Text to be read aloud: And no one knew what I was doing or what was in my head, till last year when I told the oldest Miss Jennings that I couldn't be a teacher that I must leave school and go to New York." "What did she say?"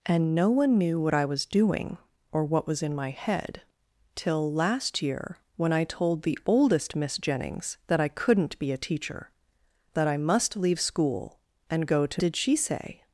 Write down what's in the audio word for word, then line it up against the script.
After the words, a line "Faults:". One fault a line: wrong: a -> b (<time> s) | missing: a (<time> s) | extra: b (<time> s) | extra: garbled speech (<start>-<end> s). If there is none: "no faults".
And no one knew what I was doing or what was in my head, till last year when I told the oldest Miss Jennings that I couldn't be a teacher that I must leave school and go to Did she say?"
Faults:
missing: New York What (12.2 s)